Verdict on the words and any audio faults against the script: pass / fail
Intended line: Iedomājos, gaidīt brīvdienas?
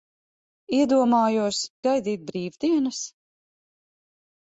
pass